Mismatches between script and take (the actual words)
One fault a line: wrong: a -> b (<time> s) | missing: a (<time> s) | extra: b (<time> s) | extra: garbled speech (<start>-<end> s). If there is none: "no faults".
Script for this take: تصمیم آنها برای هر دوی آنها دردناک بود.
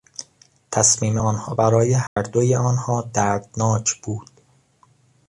no faults